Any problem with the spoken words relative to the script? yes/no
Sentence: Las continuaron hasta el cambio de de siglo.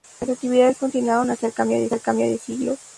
yes